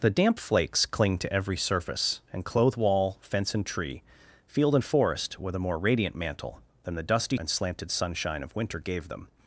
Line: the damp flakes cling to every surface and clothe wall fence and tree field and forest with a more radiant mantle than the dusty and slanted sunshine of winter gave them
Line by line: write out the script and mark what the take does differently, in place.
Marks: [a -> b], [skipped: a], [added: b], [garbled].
the damp flakes cling to every surface and clothe wall fence and tree field and forest with a more radiant mantle than the dusty and slanted sunshine of winter gave them